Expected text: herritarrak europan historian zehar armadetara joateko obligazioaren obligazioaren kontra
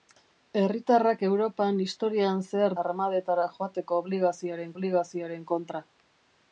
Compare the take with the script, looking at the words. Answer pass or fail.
pass